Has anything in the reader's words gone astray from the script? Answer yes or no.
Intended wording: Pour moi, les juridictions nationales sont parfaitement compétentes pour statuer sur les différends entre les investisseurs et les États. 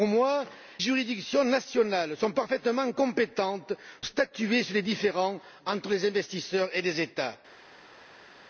yes